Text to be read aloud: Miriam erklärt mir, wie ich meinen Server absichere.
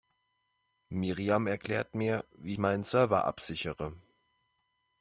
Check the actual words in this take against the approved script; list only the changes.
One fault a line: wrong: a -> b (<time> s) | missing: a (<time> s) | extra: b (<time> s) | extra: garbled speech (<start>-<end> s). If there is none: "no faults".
missing: ich (2.5 s)